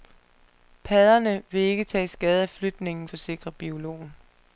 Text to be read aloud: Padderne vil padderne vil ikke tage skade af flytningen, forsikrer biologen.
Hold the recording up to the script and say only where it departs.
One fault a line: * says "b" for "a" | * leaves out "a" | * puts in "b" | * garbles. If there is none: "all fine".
* leaves out "padderne vil"